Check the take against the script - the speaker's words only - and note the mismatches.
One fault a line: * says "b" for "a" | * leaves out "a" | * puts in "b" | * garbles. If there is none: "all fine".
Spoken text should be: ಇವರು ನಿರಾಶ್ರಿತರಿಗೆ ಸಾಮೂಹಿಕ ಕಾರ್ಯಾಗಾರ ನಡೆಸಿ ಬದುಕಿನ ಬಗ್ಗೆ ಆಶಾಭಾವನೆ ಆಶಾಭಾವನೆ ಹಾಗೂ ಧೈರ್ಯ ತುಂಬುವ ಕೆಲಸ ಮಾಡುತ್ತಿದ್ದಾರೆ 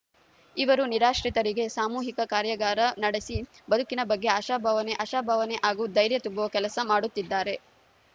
all fine